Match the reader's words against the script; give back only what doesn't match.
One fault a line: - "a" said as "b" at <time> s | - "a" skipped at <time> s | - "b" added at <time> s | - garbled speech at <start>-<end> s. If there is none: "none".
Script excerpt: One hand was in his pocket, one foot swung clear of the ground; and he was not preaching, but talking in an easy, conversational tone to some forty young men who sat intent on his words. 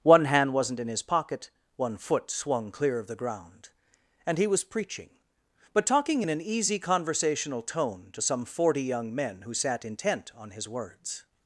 - "was" said as "wasn't" at 0.5 s
- "not" skipped at 4.6 s